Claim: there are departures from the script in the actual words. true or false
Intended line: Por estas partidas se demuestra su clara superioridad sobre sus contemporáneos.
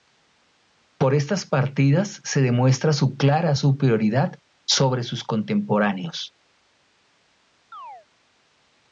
false